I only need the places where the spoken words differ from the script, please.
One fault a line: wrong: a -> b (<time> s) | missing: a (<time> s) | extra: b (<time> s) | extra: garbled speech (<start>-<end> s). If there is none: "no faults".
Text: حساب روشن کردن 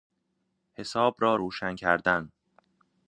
extra: را (1.2 s)